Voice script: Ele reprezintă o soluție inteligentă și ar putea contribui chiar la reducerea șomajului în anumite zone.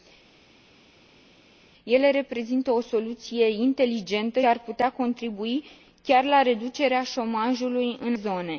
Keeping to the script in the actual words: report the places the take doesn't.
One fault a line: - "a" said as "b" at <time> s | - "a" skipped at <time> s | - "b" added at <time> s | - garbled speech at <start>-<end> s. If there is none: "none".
- "și" skipped at 4.4 s
- "anumite" skipped at 8.2 s